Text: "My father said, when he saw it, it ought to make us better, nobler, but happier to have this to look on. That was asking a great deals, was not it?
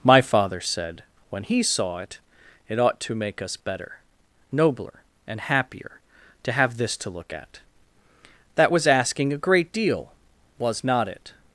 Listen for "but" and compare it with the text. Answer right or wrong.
wrong